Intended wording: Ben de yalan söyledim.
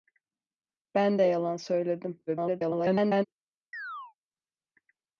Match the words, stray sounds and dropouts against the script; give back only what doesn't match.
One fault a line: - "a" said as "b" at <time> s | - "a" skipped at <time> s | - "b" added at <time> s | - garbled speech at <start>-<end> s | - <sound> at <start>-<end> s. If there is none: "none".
- garbled speech at 2.3-3.3 s
- chirp at 3.7-4.1 s